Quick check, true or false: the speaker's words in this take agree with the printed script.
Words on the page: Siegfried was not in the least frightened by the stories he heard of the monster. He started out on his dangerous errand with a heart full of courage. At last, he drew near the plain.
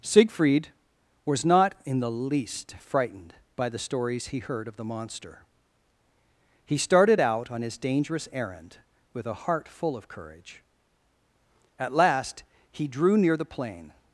true